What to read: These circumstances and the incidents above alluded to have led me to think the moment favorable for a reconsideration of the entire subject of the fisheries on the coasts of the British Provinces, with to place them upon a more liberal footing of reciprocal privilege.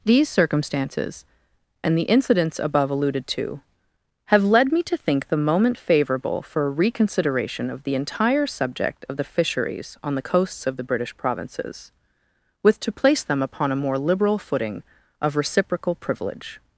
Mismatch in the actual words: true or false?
false